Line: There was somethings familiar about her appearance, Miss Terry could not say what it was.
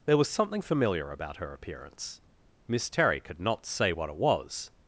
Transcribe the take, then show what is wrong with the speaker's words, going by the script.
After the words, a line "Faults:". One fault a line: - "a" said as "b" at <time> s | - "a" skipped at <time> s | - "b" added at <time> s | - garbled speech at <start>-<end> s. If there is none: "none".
There was something familiar about her appearance, Miss Terry could not say what it was.
Faults:
- "somethings" said as "something" at 0.3 s